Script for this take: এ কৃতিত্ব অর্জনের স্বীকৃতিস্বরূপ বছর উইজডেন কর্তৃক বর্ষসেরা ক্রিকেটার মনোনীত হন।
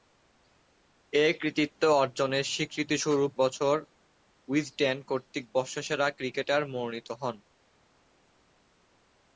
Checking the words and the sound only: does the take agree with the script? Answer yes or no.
yes